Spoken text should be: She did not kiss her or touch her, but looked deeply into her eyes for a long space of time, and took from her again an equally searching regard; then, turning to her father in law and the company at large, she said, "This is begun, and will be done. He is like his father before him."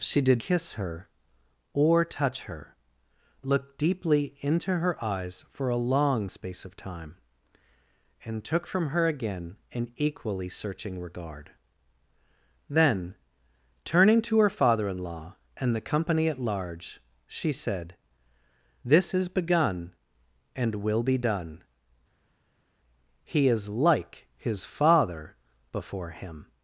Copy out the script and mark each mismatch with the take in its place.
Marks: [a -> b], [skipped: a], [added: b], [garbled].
She did [skipped: not] kiss her or touch her, [skipped: but] looked deeply into her eyes for a long space of time, and took from her again an equally searching regard; then, turning to her father in law and the company at large, she said, "This is begun, and will be done. He is like his father before him."